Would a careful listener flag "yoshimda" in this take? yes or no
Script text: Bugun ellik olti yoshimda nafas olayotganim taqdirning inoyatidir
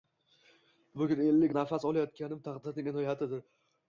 yes